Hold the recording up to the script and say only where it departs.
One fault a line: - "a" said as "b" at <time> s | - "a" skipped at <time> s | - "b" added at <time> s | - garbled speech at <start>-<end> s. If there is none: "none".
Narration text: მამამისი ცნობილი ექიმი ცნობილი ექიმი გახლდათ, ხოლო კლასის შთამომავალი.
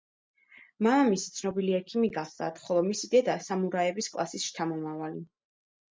- "ცნობილი ექიმი გახლდათ ხოლო" said as "გახლდათ ხოლო მისი დედა სამურაების" at 2.2 s